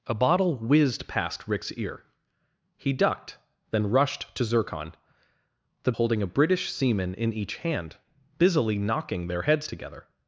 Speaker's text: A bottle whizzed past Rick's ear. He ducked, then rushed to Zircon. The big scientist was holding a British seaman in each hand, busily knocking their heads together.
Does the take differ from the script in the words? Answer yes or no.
yes